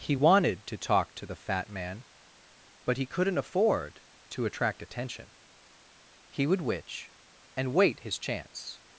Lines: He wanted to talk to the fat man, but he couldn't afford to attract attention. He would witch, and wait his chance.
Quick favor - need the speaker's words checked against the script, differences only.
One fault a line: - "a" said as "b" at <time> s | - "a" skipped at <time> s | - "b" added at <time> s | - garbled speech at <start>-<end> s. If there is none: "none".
none